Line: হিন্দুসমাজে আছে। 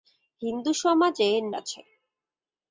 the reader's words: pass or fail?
pass